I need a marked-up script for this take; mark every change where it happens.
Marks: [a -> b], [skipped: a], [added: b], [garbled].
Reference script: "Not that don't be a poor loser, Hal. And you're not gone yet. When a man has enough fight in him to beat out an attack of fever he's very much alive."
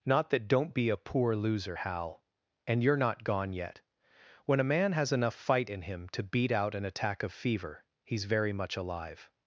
"Not that don't be a poor loser, Hal. And you're not gone yet. When a man has enough fight in him to beat out an attack of fever he's very much alive."